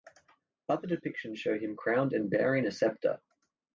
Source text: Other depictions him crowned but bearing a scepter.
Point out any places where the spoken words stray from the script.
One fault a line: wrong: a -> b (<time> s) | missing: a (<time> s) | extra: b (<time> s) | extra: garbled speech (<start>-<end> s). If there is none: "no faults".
extra: show (1.4 s)
wrong: but -> and (2.1 s)